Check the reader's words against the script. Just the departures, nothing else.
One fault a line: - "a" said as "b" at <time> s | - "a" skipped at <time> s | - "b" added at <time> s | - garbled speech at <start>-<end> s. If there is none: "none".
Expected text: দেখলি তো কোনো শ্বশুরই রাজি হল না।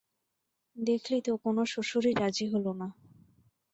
none